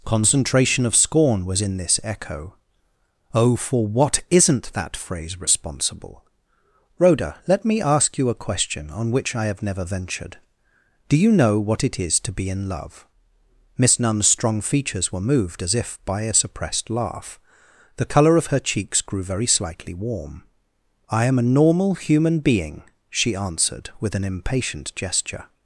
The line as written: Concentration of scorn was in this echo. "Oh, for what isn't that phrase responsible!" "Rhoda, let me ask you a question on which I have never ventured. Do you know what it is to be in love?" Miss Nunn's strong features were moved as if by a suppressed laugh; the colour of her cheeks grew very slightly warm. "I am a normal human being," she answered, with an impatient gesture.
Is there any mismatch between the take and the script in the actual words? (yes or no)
no